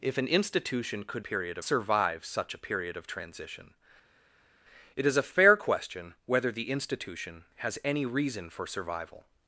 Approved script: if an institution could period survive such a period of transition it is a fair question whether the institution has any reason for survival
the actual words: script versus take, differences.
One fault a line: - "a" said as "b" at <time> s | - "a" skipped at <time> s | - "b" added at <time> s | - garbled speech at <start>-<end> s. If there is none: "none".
none